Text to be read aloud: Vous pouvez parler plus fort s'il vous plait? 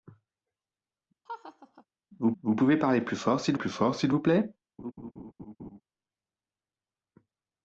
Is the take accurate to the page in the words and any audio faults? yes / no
no